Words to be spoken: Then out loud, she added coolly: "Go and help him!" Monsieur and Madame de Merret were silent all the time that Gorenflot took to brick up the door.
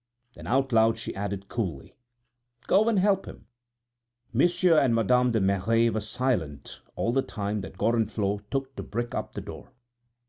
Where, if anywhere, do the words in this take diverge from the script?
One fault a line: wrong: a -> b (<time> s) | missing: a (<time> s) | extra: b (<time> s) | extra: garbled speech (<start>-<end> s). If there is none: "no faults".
no faults